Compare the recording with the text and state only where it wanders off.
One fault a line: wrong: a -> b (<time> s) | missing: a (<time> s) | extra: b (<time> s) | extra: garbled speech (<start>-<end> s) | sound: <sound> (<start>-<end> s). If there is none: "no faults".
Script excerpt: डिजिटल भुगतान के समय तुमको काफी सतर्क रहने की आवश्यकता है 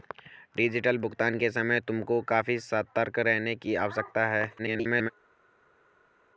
extra: garbled speech (4.6-5.1 s)